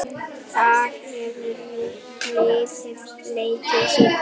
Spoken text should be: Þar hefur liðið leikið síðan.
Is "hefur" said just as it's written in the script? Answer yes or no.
yes